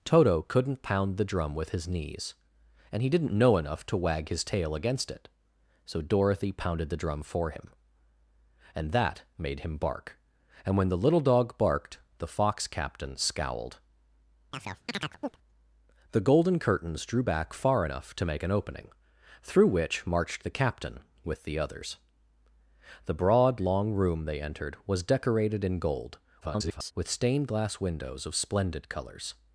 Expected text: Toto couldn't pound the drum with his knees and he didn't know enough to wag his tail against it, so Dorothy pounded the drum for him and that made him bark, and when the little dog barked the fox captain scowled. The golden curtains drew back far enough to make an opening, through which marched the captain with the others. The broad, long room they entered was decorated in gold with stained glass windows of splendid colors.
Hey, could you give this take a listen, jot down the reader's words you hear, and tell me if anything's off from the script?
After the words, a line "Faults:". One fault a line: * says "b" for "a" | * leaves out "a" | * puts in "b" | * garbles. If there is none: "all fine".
Toto couldn't pound the drum with his knees and he didn't know enough to wag his tail against it, so Dorothy pounded the drum for him and that made him bark, and when the little dog barked the fox captain scowled. The golden curtains drew back far enough to make an opening, through which marched the captain with the others. The broad, long room they entered was decorated in gold [garbled] with stained glass windows of splendid colors.
Faults:
* garbles